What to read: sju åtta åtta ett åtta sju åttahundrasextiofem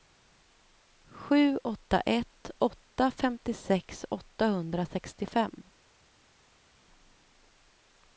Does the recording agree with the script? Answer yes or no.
no